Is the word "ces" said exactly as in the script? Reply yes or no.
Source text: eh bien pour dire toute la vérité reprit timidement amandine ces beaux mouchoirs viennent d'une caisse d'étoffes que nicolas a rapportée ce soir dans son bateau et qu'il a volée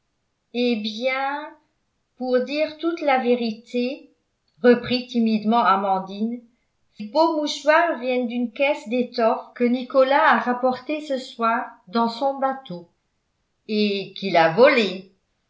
no